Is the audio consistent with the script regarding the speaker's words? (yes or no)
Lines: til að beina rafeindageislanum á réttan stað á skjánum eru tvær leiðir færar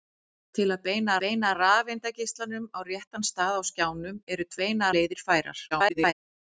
no